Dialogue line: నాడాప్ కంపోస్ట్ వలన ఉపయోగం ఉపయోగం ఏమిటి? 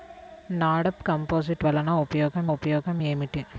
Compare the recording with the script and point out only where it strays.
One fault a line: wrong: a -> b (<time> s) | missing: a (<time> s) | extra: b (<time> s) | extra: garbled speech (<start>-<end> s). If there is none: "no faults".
no faults